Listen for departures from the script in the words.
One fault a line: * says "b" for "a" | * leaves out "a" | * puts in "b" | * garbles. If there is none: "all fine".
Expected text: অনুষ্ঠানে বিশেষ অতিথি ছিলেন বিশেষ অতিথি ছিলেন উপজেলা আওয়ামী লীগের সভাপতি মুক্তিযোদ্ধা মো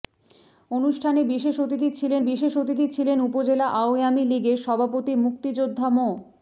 all fine